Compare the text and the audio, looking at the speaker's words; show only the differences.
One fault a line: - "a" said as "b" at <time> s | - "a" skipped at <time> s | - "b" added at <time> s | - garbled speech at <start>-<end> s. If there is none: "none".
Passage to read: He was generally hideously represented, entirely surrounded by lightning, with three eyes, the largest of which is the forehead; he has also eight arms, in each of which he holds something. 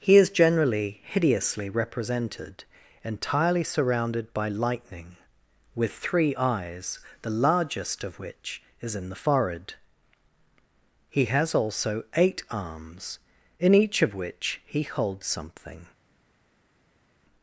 - "was" said as "is" at 0.1 s
- "in" added at 8.9 s